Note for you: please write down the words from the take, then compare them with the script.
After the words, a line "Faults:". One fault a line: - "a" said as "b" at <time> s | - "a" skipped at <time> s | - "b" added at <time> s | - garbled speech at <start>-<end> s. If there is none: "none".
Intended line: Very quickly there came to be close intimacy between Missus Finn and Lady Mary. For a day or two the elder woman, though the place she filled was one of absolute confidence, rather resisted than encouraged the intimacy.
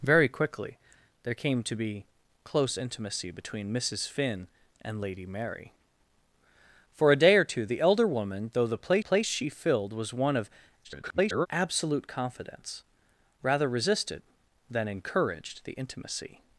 Very quickly there came to be close intimacy between Missus Finn and Lady Mary. For a day or two the elder woman, though the place place she filled was one of [garbled] absolute confidence, rather resisted than encouraged the intimacy.
Faults:
- "place" added at 9.0 s
- garbled speech at 10.8-11.5 s